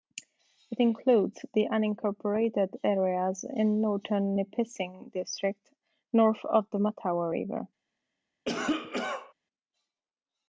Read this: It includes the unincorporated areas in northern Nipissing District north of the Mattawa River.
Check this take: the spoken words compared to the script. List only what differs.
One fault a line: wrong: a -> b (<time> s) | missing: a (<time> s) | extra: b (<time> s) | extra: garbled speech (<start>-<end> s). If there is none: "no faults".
no faults